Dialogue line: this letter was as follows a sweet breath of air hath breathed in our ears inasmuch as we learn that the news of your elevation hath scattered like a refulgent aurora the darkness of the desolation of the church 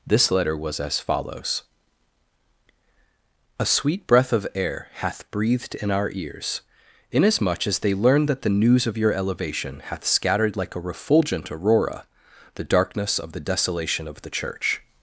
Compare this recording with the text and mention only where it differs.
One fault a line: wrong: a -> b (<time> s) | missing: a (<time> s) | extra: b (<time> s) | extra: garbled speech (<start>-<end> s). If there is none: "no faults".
wrong: we -> they (7.8 s)